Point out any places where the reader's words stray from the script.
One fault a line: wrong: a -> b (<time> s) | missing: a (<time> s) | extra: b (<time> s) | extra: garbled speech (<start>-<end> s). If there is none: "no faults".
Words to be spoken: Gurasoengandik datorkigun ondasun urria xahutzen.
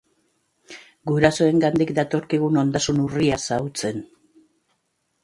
no faults